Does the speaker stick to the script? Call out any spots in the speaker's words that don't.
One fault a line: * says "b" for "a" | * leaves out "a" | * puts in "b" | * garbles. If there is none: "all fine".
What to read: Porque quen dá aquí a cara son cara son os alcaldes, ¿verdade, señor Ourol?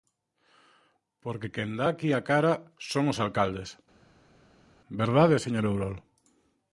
* leaves out "cara son"